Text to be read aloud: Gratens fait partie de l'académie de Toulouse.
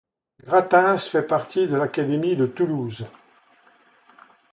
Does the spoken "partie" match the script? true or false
true